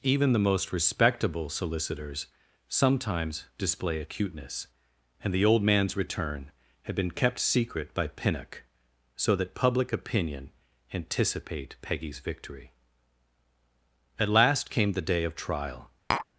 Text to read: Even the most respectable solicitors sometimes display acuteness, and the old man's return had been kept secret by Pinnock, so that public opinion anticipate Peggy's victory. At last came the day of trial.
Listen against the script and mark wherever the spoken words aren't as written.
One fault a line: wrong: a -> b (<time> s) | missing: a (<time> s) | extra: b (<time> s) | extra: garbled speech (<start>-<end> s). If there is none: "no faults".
no faults